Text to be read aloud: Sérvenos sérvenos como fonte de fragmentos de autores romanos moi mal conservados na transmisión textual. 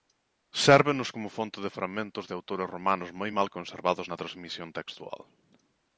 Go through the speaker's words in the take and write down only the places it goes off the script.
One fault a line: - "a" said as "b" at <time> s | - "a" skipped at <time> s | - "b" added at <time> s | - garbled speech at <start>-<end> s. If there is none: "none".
- "sérvenos" skipped at 1.1 s